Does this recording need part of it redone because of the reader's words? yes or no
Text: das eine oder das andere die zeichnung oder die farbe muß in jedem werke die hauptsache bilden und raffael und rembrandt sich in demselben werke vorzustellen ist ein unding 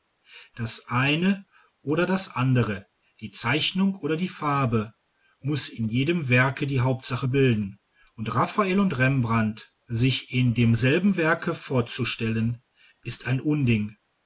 no